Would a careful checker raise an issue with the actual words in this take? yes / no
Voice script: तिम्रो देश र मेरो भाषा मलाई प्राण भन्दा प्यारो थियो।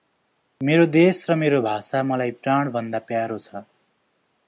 yes